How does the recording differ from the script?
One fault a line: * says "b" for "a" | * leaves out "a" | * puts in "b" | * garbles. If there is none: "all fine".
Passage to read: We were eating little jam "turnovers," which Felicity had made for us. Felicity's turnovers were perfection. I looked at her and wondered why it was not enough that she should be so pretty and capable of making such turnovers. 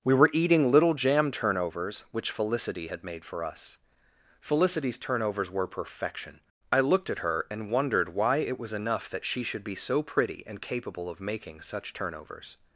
* leaves out "not"